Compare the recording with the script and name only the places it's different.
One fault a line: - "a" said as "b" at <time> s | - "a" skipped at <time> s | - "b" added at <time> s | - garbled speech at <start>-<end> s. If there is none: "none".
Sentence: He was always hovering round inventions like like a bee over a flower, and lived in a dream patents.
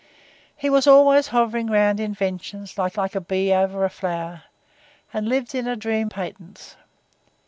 none